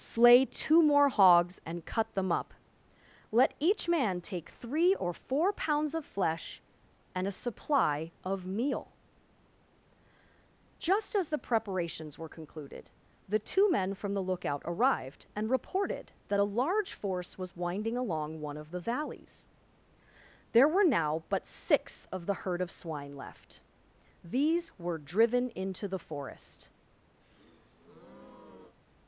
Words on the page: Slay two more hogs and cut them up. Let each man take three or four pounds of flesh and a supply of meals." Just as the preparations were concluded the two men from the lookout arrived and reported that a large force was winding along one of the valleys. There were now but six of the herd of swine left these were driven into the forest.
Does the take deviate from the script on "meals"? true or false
true